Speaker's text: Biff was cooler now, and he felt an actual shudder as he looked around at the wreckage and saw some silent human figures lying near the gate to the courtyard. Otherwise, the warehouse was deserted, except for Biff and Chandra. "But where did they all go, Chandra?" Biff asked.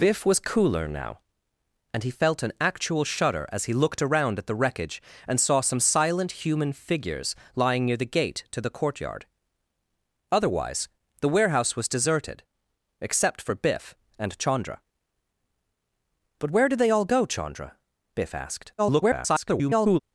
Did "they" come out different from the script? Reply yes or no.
no